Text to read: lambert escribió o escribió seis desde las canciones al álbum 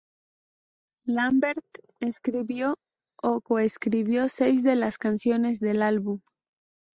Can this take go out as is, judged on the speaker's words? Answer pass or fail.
fail